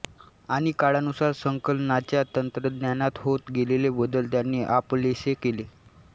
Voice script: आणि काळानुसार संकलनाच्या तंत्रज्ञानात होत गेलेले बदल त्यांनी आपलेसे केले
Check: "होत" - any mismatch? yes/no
no